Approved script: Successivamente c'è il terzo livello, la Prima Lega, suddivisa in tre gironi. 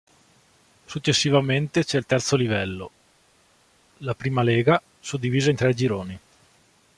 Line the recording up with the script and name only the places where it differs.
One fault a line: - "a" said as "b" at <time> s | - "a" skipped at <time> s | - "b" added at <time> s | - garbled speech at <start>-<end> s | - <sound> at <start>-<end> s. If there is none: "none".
none